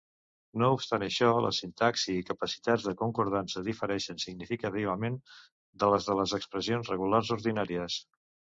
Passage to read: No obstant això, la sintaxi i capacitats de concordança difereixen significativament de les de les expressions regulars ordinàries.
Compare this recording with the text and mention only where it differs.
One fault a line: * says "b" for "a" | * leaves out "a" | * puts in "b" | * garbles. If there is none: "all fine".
all fine